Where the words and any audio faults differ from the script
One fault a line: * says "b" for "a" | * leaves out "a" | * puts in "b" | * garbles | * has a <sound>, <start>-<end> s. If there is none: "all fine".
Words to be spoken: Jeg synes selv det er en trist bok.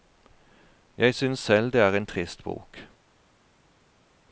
all fine